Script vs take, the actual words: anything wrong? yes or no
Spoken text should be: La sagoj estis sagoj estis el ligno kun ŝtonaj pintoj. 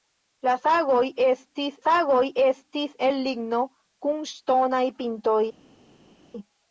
no